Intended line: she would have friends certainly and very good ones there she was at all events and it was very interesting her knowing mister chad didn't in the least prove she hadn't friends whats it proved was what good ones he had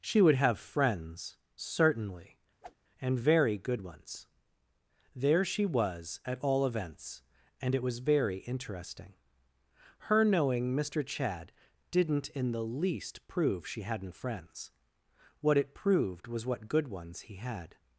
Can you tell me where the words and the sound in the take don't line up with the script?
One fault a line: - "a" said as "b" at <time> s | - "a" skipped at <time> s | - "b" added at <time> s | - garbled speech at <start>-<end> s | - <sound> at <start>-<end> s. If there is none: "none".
- whoosh at 2.6-2.8 s
- "whats" said as "what" at 15.4 s